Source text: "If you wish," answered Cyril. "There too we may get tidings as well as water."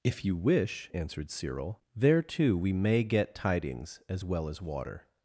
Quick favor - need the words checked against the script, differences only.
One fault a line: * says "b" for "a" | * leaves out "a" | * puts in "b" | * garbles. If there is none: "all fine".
all fine